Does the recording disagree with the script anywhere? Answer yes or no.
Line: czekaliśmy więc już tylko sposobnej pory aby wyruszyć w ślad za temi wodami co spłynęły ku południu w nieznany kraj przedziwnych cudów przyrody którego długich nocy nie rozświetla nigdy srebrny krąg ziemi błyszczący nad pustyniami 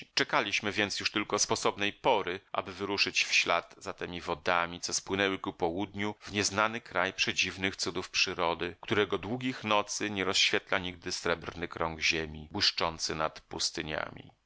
no